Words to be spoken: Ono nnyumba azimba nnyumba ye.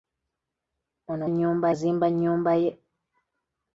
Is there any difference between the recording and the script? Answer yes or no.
no